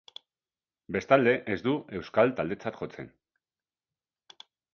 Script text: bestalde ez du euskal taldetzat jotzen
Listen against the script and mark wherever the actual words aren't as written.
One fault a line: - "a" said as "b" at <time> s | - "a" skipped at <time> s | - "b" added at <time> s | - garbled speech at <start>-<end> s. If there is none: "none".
none